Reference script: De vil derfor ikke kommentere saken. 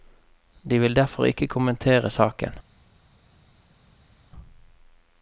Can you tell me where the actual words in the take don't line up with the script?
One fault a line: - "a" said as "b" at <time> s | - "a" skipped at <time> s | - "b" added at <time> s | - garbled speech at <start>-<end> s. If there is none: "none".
none